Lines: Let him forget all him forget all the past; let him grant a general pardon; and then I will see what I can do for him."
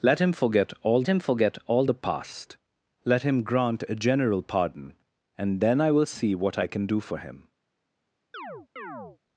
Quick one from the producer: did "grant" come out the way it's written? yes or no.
yes